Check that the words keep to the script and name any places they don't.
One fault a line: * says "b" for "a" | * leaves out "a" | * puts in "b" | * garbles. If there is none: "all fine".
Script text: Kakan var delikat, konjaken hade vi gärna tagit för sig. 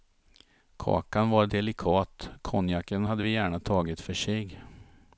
all fine